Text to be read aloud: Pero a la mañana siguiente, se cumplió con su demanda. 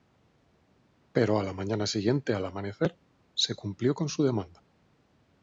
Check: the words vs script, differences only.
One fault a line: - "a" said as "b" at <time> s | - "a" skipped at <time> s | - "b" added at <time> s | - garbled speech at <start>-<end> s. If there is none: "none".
- "al amanecer" added at 2.3 s